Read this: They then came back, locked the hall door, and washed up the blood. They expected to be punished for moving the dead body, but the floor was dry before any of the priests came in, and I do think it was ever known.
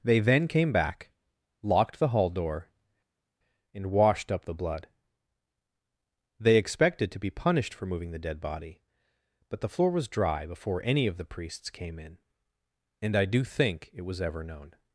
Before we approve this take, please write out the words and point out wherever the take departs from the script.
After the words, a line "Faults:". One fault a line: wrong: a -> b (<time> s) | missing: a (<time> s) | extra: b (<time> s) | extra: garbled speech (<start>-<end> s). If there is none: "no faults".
They then came back, locked the hall door, and washed up the blood. They expected to be punished for moving the dead body, but the floor was dry before any of the priests came in, and I do think it was ever known.
Faults:
no faults